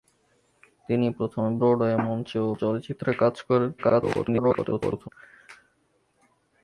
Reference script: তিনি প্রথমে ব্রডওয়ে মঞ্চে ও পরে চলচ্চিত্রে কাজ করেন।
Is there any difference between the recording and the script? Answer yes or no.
yes